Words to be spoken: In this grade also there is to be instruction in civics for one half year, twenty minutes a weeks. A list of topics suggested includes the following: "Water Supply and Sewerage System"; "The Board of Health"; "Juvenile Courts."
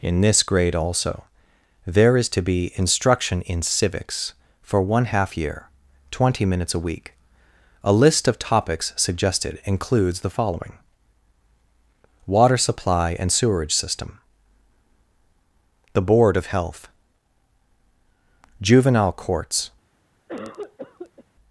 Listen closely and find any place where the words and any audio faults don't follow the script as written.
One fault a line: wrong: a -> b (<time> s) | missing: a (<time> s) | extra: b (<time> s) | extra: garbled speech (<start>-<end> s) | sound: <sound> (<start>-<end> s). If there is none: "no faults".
wrong: weeks -> week (6.8 s)
sound: cough (20.3-21.2 s)